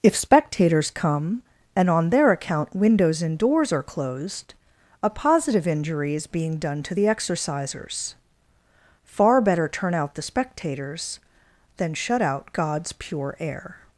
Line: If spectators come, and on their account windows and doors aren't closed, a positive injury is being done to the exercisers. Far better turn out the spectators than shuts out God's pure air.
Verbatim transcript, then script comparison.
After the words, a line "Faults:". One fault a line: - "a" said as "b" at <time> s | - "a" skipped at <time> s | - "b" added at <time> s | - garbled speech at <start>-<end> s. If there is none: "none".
If spectators come, and on their account windows and doors are closed, a positive injury is being done to the exercisers. Far better turn out the spectators than shut out God's pure air.
Faults:
- "aren't" said as "are" at 3.7 s
- "shuts" said as "shut" at 11.9 s